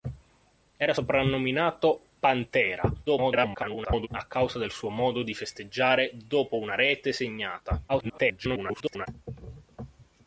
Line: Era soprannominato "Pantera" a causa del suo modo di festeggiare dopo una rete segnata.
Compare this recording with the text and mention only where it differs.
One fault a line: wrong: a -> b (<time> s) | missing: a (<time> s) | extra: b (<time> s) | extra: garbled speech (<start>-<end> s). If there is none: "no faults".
extra: garbled speech (3.1-4.1 s)
extra: garbled speech (7.9-9.1 s)